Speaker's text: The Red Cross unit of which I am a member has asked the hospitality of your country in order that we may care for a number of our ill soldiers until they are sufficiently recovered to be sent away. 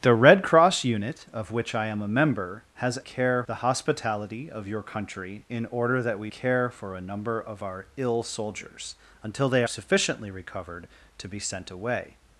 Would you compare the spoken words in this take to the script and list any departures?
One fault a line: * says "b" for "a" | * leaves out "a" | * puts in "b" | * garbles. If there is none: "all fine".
* says "care" for "asked"
* leaves out "may"
* leaves out "are"